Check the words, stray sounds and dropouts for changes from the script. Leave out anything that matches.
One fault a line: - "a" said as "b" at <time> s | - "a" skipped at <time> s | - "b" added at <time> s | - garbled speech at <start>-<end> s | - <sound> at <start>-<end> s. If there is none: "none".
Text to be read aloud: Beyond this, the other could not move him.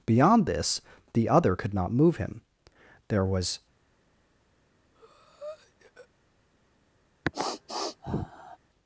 - "There was" added at 3.1 s
- breath at 4.9-6.1 s
- sniff at 7.2-8.6 s